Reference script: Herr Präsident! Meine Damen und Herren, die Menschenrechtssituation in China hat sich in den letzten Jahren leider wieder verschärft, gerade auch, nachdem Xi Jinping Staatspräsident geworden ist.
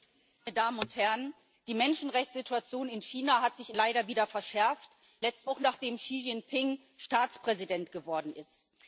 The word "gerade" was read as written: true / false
false